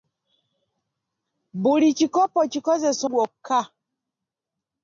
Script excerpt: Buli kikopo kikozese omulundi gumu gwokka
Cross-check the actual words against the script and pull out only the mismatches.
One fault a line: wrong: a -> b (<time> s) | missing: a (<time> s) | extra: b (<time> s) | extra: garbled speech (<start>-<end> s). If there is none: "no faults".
missing: omulundi gumu (3.0 s)